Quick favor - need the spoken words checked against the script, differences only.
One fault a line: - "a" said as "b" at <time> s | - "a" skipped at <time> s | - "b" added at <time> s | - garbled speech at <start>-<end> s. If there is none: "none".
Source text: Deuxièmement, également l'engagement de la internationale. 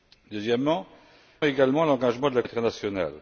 none